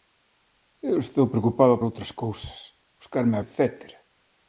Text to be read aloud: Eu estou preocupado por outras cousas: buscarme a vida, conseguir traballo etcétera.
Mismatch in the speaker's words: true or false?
true